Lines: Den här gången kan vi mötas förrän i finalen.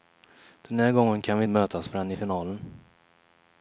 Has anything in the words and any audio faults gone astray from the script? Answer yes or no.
no